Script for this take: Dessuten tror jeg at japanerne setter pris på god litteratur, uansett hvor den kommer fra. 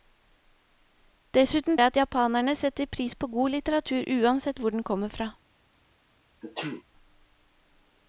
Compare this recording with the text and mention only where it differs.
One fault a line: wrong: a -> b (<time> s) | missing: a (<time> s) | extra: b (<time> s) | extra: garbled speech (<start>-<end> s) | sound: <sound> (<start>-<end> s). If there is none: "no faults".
missing: tror (1.8 s)
sound: sneeze (6.4-6.8 s)